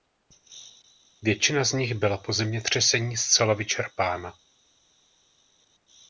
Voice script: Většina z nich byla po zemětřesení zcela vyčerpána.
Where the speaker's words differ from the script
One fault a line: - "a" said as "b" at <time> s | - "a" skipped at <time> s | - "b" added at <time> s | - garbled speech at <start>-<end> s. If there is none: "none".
none